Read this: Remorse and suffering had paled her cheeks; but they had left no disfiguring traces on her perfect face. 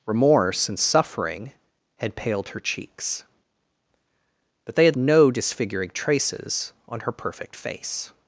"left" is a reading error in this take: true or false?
true